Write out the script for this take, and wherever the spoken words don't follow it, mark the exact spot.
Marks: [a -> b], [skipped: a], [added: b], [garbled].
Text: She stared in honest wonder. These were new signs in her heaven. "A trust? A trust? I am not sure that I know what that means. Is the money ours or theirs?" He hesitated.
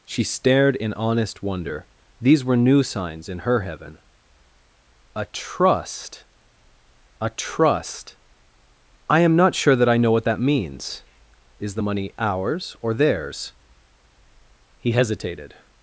She stared in honest wonder. These were new signs in her heaven. "A trust? A trust? I am not sure that I know what that means. Is the money ours or theirs?" He hesitated.